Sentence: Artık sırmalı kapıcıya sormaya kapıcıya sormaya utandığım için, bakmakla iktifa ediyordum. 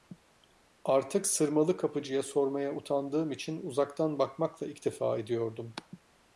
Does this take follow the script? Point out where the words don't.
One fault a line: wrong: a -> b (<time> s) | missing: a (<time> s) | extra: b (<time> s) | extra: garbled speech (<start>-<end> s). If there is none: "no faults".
missing: kapıcıya sormaya (2.8 s)
extra: uzaktan (3.6 s)